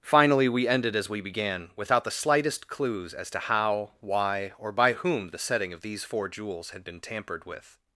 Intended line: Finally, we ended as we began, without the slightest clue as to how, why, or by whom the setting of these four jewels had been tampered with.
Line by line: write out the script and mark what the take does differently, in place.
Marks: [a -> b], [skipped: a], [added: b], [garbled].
Finally, we ended as we began, without the slightest [clue -> clues] as to how, why, or by whom the setting of these four jewels had been tampered with.